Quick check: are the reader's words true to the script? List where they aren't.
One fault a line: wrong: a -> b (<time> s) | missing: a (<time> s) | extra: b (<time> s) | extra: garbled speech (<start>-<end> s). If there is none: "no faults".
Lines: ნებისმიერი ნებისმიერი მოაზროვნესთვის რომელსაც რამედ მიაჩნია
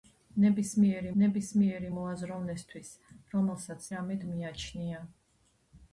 no faults